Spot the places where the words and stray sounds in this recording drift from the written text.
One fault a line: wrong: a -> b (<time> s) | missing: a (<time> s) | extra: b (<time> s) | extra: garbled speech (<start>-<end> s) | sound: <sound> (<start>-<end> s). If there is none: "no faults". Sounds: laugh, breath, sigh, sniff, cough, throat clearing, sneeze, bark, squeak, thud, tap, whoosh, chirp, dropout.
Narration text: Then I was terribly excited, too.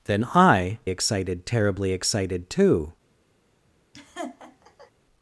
wrong: was -> excited (0.9 s)
sound: laugh (3.9-4.9 s)